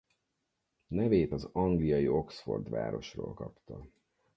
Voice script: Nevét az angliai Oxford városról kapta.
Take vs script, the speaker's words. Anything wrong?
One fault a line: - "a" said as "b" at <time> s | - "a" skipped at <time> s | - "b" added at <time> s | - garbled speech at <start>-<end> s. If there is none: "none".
none